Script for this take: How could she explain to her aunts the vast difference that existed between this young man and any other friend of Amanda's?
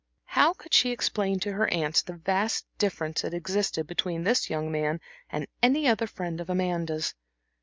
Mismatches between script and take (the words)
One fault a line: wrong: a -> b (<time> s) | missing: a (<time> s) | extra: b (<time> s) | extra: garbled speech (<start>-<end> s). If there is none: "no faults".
no faults